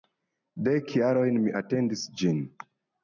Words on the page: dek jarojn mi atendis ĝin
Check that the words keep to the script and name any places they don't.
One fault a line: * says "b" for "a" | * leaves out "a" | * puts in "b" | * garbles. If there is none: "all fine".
all fine